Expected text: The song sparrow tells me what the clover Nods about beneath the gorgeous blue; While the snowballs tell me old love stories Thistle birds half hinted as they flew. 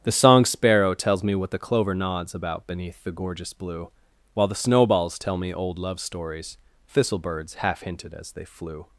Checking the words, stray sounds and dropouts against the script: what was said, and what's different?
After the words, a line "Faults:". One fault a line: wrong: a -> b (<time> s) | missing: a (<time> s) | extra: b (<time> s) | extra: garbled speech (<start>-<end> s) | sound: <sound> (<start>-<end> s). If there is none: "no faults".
The song sparrow tells me what the clover Nods about beneath the gorgeous blue; While the snowballs tell me old love stories Thistle birds half hinted as they flew.
Faults:
no faults